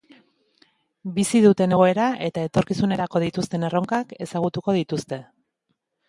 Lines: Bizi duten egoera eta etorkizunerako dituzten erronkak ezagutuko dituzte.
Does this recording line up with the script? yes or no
yes